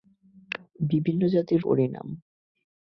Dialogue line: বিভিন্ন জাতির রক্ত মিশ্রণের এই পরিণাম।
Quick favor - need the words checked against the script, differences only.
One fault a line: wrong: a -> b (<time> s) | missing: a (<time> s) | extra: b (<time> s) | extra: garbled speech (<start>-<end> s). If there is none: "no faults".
missing: রক্ত মিশ্রণের এই (1.6 s)